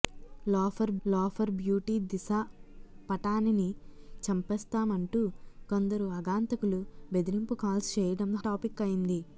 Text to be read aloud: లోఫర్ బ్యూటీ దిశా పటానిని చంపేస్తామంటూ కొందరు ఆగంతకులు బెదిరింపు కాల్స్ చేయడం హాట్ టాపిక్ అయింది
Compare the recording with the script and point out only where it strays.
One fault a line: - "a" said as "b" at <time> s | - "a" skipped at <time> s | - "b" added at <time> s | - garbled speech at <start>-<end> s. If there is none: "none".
- "లోఫర్" added at 1.0 s
- "హాట్" skipped at 8.3 s